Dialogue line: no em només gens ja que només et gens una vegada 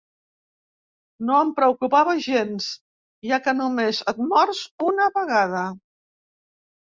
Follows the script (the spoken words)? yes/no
no